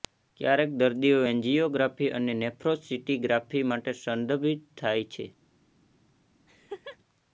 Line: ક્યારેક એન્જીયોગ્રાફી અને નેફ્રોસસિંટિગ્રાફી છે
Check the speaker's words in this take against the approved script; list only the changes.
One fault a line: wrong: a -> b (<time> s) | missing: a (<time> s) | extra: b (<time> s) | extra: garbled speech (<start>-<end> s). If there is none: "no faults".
extra: દર્દીઓ (0.8 s)
extra: માટે સંદર્ભિત થાય (3.7 s)